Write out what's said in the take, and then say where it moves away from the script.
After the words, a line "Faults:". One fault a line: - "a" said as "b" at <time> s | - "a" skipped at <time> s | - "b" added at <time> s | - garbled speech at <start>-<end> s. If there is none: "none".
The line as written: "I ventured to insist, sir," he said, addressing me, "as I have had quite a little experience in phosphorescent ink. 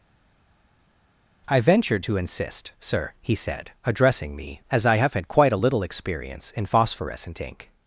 "I ventured to insist, sir," he said, addressing me, "as I have had quite a little experience in phosphorescent ink.
Faults:
none